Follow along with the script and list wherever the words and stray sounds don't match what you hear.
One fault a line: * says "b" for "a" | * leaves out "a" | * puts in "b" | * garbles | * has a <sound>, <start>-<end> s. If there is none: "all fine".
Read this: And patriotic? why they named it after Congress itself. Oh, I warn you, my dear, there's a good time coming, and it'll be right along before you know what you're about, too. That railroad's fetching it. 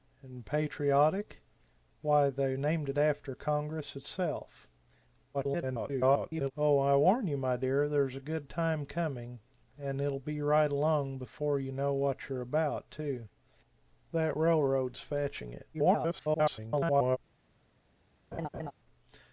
* garbles
* garbles
* has a laugh, 18.3-18.7 s